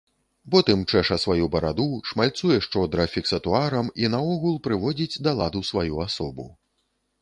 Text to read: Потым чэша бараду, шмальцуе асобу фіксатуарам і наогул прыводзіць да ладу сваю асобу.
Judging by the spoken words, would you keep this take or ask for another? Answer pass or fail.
fail